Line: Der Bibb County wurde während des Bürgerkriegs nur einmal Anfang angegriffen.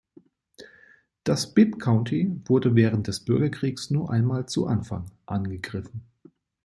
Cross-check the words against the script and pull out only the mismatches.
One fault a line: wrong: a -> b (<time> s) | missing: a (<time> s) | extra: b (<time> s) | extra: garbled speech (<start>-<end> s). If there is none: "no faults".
wrong: Der -> Das (1.2 s)
extra: zu (4.5 s)